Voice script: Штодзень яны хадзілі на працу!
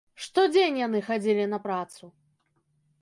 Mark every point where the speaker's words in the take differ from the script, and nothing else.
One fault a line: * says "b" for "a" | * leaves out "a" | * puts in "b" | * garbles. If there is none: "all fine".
all fine